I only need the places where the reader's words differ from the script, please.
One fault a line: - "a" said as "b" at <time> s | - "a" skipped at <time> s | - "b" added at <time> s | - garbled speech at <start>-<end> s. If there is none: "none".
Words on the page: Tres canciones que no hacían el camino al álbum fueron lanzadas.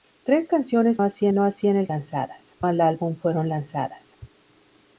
- "que" said as "hacían" at 1.0 s
- "camino" said as "lanzadas" at 1.9 s